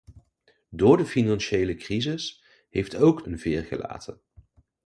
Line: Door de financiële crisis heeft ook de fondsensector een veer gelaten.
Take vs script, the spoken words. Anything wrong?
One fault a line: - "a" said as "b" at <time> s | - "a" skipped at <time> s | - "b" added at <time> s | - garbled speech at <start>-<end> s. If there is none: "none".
- "de fondsensector" skipped at 3.2 s